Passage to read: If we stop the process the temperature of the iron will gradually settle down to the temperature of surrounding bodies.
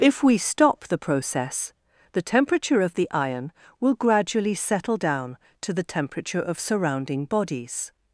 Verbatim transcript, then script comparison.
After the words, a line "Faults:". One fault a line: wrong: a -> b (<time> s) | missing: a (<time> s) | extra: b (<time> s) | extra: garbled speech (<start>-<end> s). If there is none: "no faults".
If we stop the process the temperature of the iron will gradually settle down to the temperature of surrounding bodies.
Faults:
no faults